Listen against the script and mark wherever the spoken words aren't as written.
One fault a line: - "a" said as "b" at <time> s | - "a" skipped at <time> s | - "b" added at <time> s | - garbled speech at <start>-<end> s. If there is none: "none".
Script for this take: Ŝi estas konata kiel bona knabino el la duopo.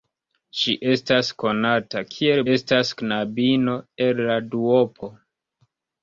- "bona" said as "estas" at 2.5 s